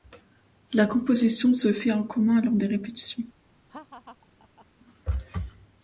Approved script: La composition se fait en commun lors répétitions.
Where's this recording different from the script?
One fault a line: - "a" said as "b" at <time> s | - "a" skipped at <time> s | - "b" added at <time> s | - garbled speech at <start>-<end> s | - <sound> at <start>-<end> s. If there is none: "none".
- "des" added at 2.5 s
- laugh at 3.7-4.7 s